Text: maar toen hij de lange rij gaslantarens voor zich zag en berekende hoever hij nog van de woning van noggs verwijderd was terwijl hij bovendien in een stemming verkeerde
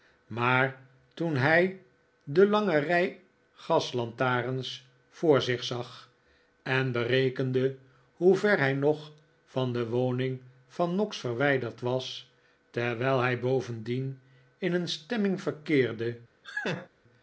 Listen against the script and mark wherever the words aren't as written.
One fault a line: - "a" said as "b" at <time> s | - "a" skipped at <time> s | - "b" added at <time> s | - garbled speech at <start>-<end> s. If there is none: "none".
none